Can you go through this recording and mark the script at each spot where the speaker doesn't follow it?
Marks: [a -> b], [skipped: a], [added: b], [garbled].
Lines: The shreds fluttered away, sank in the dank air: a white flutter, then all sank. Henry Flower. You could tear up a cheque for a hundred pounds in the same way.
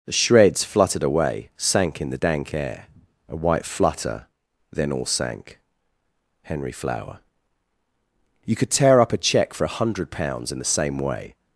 The shreds fluttered away, sank in the dank air: a white flutter, then all sank. Henry Flower. You could tear up a cheque for a hundred pounds in the same way.